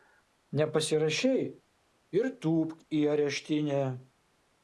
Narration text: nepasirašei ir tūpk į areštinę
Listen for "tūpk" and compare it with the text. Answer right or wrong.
right